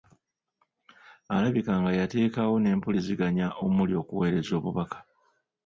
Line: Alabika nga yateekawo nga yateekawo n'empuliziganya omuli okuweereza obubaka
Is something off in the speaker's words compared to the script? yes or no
yes